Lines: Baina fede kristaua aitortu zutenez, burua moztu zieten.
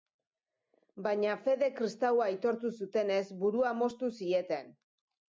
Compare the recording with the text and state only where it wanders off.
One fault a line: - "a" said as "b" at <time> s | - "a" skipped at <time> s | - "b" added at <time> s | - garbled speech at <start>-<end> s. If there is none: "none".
none